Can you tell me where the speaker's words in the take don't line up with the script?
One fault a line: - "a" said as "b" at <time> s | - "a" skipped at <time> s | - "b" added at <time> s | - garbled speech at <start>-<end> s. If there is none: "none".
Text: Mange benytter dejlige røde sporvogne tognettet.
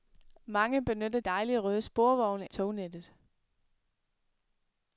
none